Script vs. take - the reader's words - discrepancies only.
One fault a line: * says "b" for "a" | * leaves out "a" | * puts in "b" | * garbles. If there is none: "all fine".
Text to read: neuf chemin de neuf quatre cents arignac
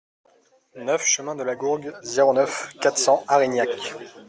* puts in "la gourgue zéro"